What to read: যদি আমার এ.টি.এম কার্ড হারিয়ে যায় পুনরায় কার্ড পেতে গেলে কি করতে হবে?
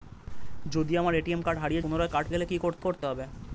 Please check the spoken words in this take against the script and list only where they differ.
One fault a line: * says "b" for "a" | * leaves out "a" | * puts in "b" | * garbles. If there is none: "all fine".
* leaves out "যায়"
* leaves out "পেতে"
* puts in "করতে"